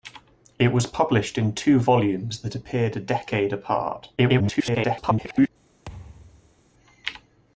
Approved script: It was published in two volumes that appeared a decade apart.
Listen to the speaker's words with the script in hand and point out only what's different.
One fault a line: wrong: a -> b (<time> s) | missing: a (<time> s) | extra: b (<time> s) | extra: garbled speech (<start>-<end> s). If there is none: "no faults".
extra: garbled speech (4.2-5.5 s)